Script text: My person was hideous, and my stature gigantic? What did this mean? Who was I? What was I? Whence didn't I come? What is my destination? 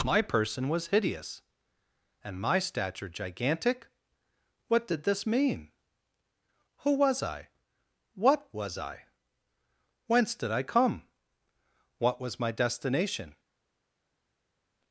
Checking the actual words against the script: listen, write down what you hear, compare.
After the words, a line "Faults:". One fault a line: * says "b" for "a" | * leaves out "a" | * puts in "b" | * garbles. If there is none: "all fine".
My person was hideous, and my stature gigantic? What did this mean? Who was I? What was I? Whence did I come? What was my destination?
Faults:
* says "did" for "didn't"
* says "was" for "is"